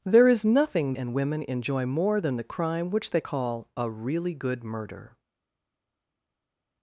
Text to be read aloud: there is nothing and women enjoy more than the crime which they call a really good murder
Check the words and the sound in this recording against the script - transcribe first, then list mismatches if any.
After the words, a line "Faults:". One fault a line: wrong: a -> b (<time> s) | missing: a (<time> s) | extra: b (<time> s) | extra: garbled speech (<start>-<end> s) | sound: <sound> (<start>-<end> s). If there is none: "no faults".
there is nothing and women enjoy more than the crime which they call a really good murder
Faults:
no faults